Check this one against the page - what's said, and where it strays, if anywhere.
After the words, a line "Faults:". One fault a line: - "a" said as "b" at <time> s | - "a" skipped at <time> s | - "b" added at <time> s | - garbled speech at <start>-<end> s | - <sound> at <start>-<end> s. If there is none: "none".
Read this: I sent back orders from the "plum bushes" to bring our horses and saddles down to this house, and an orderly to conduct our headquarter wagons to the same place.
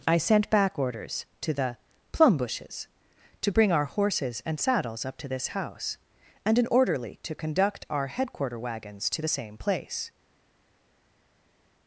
I sent back orders to the "plum bushes" to bring our horses and saddles up to this house, and an orderly to conduct our headquarter wagons to the same place.
Faults:
- "from" said as "to" at 1.4 s
- "down" said as "up" at 5.0 s